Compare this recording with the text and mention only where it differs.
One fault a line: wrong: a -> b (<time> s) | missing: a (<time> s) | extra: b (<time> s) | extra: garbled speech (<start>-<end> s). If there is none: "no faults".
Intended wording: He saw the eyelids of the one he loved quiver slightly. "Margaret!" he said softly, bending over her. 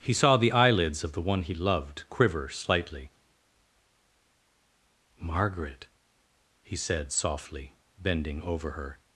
no faults